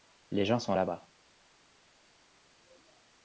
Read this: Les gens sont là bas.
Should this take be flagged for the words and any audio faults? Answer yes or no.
no